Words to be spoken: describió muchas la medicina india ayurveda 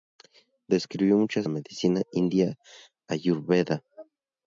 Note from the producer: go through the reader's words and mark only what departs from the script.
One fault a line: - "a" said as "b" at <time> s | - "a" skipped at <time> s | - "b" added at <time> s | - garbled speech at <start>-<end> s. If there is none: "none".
none